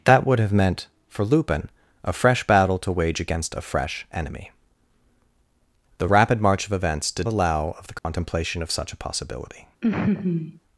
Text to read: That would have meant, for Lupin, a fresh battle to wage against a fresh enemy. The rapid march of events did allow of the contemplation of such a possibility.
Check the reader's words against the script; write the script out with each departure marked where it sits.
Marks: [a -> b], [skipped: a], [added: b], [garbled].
That would have meant, for Lupin, a fresh battle to wage against a fresh enemy. The rapid march of events did allow of the contemplation of such a possibility.